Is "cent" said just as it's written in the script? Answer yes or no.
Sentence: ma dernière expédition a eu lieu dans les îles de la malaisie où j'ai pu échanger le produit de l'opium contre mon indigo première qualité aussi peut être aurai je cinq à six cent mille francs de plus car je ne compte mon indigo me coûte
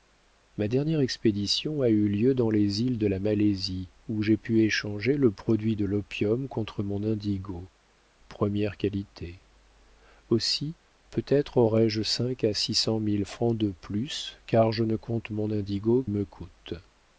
yes